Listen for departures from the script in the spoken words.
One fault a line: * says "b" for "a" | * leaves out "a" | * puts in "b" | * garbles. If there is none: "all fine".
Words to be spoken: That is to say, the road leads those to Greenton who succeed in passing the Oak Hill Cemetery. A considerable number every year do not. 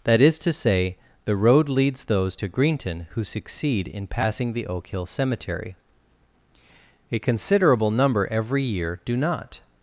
all fine